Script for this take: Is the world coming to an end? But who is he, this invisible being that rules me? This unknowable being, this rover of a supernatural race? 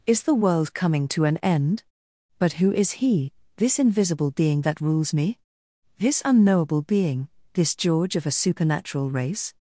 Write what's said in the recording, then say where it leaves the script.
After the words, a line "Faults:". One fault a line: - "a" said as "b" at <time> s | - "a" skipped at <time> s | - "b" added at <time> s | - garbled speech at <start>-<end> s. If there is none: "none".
Is the world coming to an end? But who is he, this invisible being that rules me? This unknowable being, this george of a supernatural race?
Faults:
- "rover" said as "george" at 7.7 s